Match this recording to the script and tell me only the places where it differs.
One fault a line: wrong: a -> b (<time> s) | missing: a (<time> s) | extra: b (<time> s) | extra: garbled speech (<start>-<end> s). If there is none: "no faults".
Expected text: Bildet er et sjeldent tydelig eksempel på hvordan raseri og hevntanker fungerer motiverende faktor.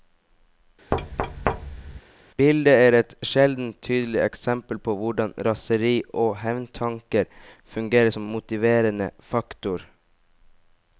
extra: som (8.1 s)